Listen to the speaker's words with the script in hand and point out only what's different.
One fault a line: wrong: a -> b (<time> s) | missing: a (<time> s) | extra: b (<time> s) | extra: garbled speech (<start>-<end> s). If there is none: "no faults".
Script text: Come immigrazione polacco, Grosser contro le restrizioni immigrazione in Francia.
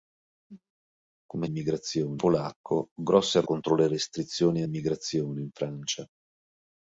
no faults